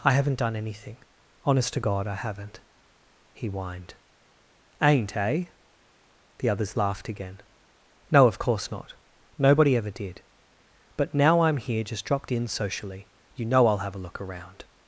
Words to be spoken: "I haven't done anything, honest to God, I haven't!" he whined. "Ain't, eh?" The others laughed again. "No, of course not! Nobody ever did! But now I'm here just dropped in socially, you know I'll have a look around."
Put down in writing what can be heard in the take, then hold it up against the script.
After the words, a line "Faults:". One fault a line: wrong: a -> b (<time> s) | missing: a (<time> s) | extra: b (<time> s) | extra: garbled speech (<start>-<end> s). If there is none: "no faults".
"I haven't done anything, honest to God, I haven't!" he whined. "Ain't, eh?" The others laughed again. "No, of course not! Nobody ever did! But now I'm here just dropped in socially, you know I'll have a look around."
Faults:
no faults